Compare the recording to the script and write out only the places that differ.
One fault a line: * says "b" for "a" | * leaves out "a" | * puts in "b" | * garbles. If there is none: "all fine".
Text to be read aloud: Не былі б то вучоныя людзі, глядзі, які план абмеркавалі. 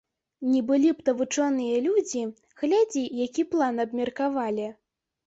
all fine